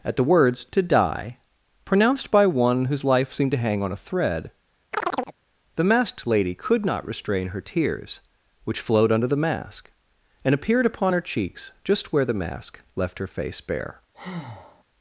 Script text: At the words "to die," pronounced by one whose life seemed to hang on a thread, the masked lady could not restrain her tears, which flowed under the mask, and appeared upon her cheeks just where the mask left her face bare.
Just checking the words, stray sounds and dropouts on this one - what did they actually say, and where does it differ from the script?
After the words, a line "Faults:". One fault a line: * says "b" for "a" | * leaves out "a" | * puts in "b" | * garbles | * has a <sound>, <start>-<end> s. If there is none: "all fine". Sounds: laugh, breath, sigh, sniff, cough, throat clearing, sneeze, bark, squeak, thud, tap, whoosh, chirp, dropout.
At the words "to die," pronounced by one whose life seemed to hang on a thread, the masked lady could not restrain her tears, which flowed under the mask, and appeared upon her cheeks just where the mask left her face bare.
Faults:
* has a chirp, 4.9-5.4 s
* has a breath, 14.1-14.8 s